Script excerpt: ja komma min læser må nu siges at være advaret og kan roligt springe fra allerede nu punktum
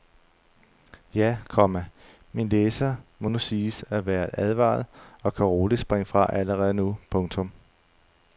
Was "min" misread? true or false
false